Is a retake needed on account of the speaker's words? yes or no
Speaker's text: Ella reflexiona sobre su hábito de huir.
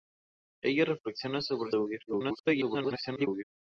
yes